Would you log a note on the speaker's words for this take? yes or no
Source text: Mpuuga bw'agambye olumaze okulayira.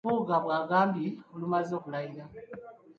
no